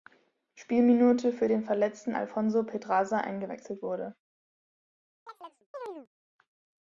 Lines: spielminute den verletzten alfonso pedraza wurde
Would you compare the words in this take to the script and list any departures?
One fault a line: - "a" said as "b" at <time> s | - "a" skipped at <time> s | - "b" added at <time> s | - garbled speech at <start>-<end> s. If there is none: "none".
- "für" added at 1.3 s
- "eingewechselt" added at 3.2 s